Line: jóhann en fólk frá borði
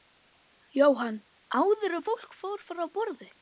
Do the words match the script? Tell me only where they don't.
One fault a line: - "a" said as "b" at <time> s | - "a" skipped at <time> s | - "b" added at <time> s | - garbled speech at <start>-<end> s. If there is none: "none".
- "áður" added at 1.6 s
- "fór" added at 2.4 s